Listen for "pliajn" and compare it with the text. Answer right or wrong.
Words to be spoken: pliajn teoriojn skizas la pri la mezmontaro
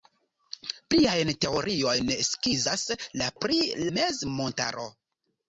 right